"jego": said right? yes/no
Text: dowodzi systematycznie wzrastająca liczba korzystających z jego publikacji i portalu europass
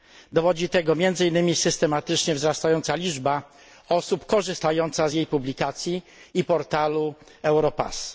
no